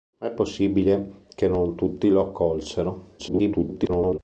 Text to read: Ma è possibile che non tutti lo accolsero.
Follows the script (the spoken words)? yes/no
no